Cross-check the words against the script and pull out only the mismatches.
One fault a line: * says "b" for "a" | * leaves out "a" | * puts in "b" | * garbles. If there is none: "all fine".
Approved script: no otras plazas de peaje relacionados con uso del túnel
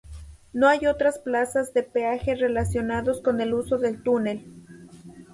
* puts in "hay"
* puts in "el"